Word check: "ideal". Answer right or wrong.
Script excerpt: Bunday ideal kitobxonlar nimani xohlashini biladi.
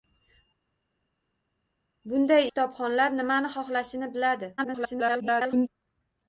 wrong